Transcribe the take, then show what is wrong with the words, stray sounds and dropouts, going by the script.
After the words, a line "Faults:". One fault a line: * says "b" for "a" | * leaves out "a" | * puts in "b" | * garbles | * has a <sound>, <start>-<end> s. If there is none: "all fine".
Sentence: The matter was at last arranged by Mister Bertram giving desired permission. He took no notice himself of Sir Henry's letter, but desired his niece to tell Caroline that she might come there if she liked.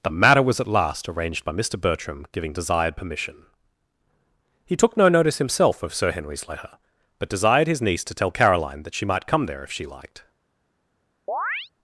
The matter was at last arranged by Mister Bertram giving desired permission. He took no notice himself of Sir Henry's letter, but desired his niece to tell Caroline that she might come there if she liked.
Faults:
* has a chirp, 11.3-11.7 s